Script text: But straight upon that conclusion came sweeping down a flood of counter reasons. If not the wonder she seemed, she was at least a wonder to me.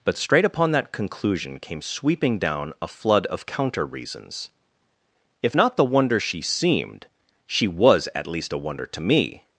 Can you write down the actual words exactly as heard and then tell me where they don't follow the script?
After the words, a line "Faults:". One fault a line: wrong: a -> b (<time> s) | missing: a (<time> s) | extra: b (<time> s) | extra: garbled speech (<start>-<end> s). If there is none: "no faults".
But straight upon that conclusion came sweeping down a flood of counter reasons. If not the wonder she seemed, she was at least a wonder to me.
Faults:
no faults